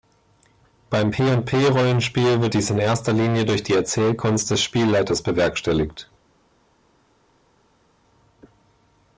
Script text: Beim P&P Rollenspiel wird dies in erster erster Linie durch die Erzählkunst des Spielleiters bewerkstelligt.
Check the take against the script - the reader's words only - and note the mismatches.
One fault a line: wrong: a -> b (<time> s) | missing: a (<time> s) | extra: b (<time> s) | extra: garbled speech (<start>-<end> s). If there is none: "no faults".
missing: erster (3.1 s)